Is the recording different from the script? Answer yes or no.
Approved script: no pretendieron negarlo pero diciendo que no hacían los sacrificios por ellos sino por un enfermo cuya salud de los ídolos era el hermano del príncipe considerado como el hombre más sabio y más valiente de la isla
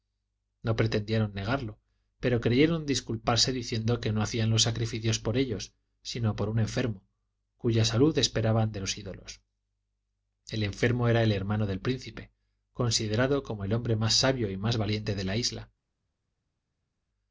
yes